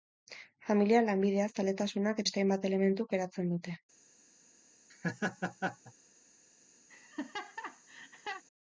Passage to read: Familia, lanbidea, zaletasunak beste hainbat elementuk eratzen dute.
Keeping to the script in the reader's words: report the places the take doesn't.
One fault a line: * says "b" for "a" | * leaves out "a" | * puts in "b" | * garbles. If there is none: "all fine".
all fine